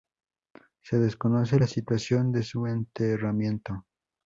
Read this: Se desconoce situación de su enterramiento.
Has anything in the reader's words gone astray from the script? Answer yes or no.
yes